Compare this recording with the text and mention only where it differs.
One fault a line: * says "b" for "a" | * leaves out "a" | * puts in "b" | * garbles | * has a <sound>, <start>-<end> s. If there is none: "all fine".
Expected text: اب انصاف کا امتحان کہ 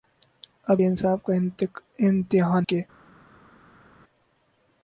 all fine